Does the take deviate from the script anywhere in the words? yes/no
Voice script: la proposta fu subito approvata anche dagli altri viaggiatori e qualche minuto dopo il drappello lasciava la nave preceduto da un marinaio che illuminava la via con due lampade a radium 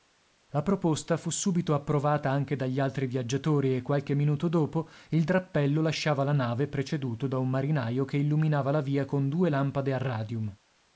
no